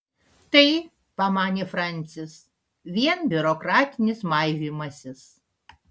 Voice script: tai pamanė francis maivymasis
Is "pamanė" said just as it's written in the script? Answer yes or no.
yes